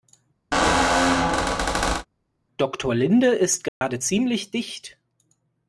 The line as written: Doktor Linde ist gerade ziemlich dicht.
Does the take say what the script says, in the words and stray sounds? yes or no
no